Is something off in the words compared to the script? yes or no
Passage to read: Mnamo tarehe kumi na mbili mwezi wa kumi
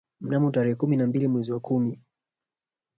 no